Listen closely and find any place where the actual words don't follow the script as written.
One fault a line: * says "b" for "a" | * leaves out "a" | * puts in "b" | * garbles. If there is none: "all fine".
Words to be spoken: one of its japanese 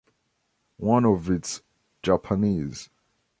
all fine